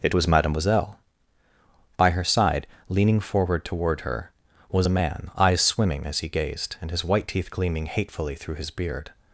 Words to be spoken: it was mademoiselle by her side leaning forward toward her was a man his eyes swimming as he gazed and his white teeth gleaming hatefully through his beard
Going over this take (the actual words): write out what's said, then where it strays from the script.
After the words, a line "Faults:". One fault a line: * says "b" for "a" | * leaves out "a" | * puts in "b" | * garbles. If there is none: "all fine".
it was mademoiselle by her side leaning forward toward her was a man eyes swimming as he gazed and his white teeth gleaming hatefully through his beard
Faults:
* leaves out "his"